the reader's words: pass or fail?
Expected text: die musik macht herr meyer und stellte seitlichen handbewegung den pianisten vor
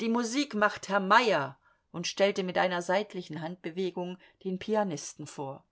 fail